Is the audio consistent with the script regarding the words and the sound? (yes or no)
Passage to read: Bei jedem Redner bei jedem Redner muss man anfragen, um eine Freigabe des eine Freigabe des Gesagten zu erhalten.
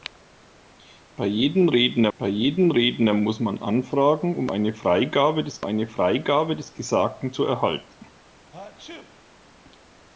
no